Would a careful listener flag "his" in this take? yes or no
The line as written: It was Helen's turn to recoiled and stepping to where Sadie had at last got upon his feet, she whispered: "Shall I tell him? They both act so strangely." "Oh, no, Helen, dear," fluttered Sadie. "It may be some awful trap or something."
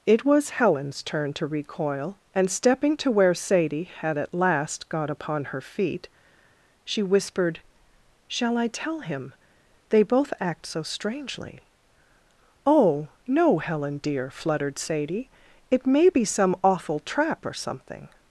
yes